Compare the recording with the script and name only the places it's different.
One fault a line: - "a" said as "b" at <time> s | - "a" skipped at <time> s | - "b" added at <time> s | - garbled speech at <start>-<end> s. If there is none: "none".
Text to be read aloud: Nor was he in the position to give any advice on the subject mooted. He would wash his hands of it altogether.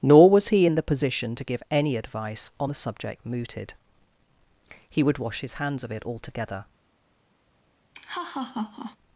none